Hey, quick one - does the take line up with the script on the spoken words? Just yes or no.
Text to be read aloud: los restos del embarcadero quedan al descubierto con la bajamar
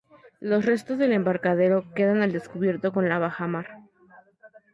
yes